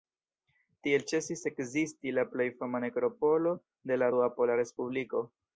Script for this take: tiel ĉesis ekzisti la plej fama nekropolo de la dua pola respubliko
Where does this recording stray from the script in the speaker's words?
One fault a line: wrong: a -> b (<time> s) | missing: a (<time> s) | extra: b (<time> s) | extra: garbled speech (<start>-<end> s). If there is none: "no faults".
no faults